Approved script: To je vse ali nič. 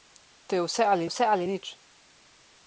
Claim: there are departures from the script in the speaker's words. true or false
true